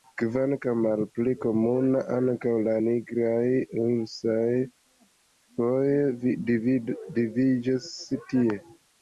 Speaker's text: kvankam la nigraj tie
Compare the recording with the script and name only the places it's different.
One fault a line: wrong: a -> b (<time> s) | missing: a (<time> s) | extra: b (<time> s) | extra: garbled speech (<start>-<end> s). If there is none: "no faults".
extra: malpli komuna ankaŭ (0.8 s)
extra: ursoj foje vidiĝas (3.9 s)